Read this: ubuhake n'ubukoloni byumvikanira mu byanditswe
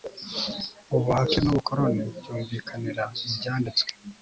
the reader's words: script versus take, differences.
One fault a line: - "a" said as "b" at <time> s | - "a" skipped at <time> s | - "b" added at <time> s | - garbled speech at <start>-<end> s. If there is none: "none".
none